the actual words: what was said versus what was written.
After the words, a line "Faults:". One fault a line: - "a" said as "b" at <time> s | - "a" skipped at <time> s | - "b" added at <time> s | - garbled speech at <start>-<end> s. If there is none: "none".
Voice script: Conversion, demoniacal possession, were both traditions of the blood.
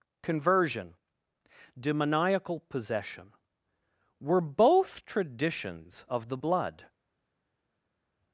Conversion, demoniacal possession, were both traditions of the blood.
Faults:
none